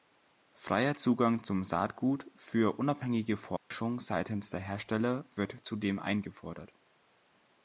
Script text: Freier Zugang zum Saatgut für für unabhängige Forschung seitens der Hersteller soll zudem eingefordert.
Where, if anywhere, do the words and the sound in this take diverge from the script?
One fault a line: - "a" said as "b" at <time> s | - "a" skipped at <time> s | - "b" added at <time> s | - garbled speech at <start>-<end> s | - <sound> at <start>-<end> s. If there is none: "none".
- "für" skipped at 2.8 s
- dropout at 3.6-3.7 s
- "soll" said as "wird" at 5.3 s